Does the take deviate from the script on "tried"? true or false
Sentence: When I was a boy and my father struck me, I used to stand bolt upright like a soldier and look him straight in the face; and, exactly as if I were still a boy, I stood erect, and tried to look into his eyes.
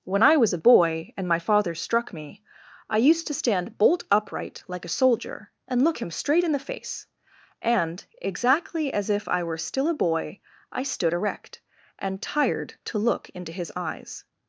true